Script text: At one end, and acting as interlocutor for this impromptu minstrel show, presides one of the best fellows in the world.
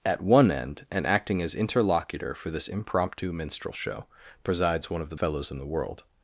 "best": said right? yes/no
no